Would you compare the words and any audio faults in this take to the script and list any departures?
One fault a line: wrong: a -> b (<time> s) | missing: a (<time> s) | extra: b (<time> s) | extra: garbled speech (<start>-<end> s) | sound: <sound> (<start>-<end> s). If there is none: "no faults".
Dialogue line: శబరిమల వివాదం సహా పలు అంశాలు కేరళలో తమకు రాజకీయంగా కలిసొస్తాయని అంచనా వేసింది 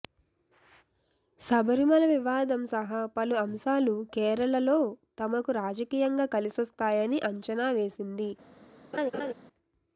sound: laugh (8.9-9.3 s)